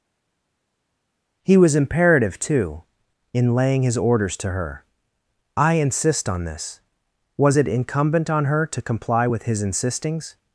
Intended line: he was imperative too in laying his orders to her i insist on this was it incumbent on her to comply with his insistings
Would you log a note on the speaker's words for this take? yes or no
no